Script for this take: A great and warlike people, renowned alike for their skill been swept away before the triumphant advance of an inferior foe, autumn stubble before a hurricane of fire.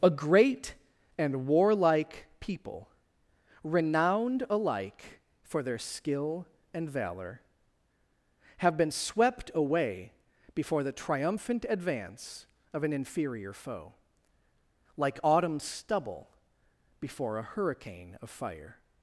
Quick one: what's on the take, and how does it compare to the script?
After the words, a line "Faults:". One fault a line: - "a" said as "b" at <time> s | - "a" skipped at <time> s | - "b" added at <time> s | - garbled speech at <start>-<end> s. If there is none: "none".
A great and warlike people, renowned alike for their skill and valor, have been swept away before the triumphant advance of an inferior foe, like autumn stubble before a hurricane of fire.
Faults:
- "and valor have" added at 6.7 s
- "like" added at 15.0 s